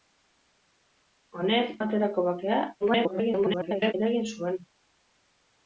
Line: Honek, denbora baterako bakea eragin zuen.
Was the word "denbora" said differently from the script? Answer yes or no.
yes